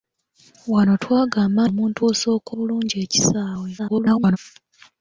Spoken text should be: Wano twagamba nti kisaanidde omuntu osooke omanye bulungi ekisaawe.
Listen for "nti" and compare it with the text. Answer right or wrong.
wrong